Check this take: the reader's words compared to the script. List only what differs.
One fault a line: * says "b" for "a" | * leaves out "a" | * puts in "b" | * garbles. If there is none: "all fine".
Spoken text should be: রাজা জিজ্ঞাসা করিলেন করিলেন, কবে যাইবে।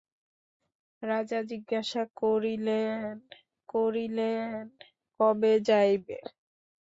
all fine